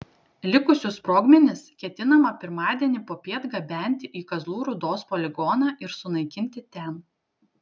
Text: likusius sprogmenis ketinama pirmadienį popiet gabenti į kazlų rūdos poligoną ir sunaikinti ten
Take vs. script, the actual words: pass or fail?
pass